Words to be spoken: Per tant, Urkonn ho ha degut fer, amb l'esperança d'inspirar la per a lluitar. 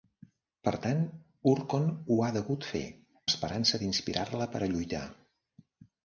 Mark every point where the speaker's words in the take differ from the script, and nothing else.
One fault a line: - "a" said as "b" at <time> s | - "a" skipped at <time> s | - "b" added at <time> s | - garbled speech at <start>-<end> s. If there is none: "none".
- "amb" skipped at 2.8 s